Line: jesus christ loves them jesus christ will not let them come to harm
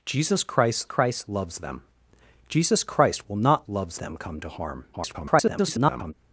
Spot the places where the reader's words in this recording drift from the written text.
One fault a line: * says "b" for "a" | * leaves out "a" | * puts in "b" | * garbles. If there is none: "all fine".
* puts in "christ"
* says "loves" for "let"
* garbles